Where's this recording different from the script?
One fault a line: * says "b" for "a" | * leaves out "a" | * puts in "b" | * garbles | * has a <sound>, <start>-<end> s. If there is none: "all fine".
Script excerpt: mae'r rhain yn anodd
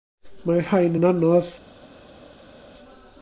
all fine